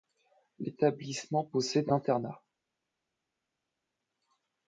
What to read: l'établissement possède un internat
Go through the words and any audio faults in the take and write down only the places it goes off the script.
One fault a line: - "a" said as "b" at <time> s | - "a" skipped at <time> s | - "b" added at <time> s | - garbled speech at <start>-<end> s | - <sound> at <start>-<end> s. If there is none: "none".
- "un" skipped at 1.9 s